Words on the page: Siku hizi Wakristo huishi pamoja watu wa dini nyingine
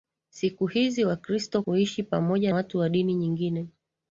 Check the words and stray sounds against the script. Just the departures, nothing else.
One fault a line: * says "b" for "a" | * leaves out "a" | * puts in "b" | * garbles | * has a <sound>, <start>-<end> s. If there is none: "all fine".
all fine